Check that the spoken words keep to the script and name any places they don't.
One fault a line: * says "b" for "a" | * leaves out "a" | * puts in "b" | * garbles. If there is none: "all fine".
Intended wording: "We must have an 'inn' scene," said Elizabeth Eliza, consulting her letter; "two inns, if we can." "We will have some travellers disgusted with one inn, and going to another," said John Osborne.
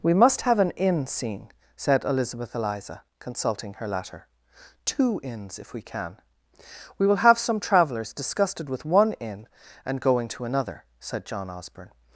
all fine